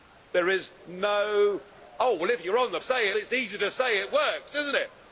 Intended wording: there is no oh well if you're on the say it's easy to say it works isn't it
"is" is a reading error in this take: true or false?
false